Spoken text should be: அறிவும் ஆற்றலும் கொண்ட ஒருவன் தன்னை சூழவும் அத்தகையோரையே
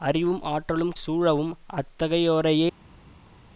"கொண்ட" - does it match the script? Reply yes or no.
no